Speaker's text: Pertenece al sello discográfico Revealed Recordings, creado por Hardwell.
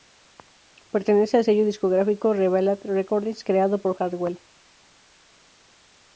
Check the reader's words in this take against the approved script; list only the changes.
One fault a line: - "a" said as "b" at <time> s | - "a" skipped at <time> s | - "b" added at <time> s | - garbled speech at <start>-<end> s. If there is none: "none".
none